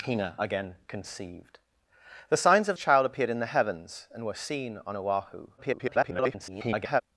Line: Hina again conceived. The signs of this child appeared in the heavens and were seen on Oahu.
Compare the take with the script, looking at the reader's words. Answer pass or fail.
fail